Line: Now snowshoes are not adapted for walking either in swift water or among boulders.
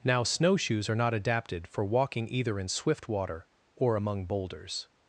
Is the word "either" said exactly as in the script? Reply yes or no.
yes